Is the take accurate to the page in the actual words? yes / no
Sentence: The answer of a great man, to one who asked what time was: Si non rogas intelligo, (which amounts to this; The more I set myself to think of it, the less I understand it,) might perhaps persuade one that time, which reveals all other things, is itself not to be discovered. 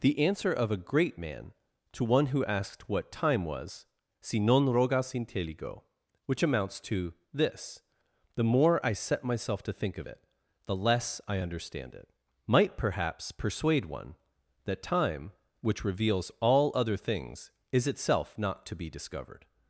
yes